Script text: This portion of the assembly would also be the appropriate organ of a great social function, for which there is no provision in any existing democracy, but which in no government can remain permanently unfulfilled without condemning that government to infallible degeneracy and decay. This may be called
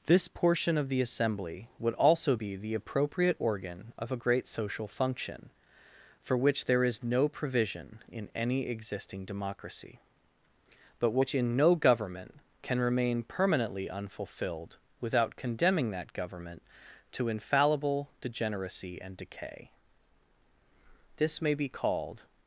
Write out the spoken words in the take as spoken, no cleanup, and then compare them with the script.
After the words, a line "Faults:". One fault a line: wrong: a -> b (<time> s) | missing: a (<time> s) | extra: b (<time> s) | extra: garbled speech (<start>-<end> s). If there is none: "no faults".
This portion of the assembly would also be the appropriate organ of a great social function, for which there is no provision in any existing democracy, but which in no government can remain permanently unfulfilled without condemning that government to infallible degeneracy and decay. This may be called
Faults:
no faults